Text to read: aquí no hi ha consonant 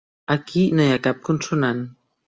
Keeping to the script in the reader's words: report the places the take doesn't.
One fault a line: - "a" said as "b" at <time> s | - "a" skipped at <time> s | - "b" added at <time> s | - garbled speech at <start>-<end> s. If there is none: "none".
- "cap" added at 1.1 s